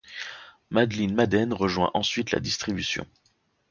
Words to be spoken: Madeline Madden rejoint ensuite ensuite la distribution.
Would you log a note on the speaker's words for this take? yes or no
yes